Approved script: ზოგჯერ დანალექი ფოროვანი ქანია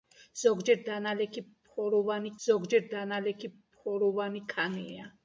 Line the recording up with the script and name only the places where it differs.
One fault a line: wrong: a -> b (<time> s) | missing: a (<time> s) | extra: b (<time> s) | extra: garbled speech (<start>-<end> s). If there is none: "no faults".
extra: ზოგჯერ დანალექი ფოროვანი (2.5 s)